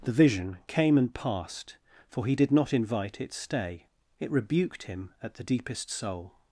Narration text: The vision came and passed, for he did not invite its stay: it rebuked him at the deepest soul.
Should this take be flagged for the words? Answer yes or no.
no